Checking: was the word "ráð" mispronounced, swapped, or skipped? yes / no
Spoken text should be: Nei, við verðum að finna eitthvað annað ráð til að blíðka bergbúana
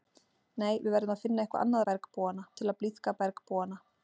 yes